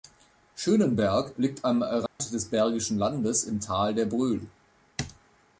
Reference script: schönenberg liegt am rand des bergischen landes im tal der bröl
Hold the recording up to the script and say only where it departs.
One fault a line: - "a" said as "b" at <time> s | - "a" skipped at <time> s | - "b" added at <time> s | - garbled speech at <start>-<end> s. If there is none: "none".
none